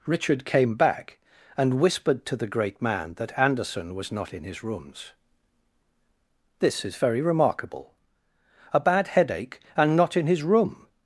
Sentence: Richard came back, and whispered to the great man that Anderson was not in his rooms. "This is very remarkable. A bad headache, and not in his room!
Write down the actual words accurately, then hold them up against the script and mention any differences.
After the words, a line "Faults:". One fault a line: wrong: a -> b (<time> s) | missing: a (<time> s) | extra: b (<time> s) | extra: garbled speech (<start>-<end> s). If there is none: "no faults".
Richard came back, and whispered to the great man that Anderson was not in his rooms. "This is very remarkable. A bad headache, and not in his room!
Faults:
no faults